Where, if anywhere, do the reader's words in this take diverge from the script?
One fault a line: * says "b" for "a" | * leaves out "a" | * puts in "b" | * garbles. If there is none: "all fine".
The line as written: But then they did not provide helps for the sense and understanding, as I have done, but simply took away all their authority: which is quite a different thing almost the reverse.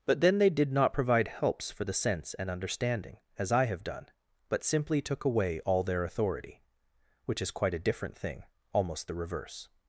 all fine